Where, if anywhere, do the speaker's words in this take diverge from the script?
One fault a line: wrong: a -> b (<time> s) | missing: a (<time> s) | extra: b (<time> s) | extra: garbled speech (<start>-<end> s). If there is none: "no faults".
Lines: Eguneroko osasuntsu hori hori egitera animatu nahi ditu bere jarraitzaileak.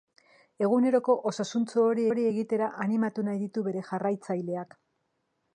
no faults